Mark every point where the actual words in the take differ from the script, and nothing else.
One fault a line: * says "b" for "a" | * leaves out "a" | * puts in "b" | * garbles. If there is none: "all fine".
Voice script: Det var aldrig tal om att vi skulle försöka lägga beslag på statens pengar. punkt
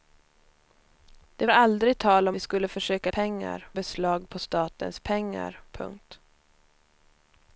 * leaves out "var"
* leaves out "att"
* says "pengar" for "lägga"